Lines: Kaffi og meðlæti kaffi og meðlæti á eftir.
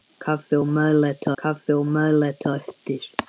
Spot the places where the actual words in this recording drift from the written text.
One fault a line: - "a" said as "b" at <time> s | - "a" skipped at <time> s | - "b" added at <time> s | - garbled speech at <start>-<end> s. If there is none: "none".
none